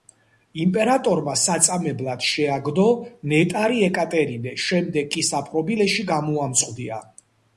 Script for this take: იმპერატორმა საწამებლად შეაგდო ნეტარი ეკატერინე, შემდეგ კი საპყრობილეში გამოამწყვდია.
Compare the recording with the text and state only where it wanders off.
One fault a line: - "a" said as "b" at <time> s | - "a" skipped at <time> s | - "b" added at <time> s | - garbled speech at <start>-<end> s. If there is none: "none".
none